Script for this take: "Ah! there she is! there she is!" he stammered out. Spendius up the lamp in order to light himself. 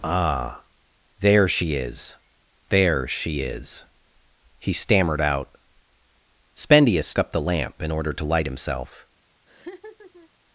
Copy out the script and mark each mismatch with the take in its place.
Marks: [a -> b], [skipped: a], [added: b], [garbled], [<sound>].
"Ah! there she is! there she is!" he stammered out. Spendius up the lamp in order to light himself. [laugh]